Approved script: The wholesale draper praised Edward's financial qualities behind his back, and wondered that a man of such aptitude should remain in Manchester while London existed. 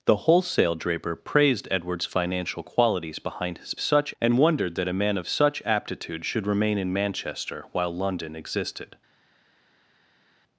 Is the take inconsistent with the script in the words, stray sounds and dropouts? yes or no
yes